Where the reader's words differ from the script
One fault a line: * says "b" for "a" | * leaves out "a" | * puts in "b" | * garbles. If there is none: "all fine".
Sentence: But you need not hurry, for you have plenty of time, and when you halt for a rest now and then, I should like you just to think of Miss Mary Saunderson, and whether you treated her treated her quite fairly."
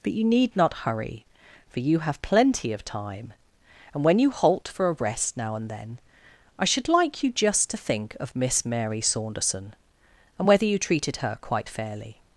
* leaves out "treated her"